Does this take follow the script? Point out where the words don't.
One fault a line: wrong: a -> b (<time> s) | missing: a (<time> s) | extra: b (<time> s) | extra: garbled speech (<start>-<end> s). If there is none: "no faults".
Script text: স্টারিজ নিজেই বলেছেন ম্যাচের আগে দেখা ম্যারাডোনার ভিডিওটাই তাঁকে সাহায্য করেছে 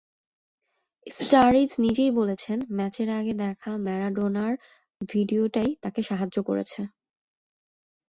no faults